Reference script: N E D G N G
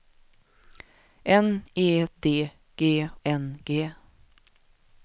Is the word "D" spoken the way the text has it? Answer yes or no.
yes